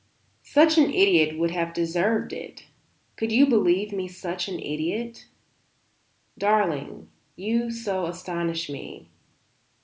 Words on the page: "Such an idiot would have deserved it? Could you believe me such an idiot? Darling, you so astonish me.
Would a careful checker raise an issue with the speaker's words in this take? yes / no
no